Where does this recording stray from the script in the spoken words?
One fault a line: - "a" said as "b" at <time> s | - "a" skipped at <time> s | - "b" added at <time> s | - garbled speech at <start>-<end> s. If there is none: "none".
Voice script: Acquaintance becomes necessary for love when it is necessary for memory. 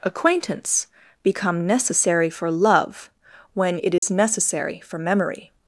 - "becomes" said as "become" at 1.2 s